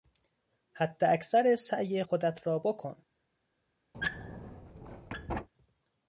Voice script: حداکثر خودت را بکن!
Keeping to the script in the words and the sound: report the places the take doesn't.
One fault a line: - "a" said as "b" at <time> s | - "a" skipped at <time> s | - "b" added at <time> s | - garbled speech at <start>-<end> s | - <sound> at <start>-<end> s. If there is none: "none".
- "سعی" added at 1.6 s
- squeak at 3.9-5.5 s